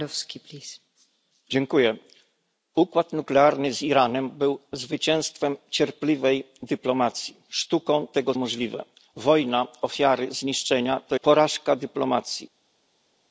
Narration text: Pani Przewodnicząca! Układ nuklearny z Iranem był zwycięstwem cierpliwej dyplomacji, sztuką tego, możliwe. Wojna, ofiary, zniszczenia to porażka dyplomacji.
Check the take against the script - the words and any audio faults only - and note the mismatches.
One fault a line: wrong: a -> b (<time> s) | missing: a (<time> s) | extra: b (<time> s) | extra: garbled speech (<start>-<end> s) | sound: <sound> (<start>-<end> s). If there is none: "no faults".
no faults